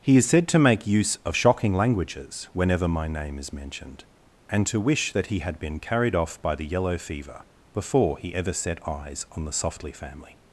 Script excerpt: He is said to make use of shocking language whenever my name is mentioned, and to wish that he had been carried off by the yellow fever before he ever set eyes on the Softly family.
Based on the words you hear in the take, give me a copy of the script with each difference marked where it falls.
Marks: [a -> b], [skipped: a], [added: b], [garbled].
He is said to make use of shocking [language -> languages] whenever my name is mentioned, and to wish that he had been carried off by the yellow fever before he ever set eyes on the Softly family.